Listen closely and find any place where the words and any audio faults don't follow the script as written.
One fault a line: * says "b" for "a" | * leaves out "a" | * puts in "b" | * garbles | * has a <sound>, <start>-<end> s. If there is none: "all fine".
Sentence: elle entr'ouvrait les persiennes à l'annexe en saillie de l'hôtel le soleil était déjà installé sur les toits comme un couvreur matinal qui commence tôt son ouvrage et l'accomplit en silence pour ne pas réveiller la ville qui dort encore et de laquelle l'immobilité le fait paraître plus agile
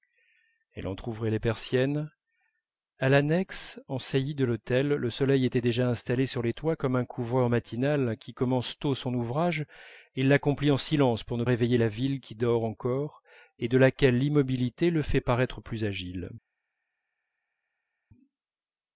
* leaves out "pas"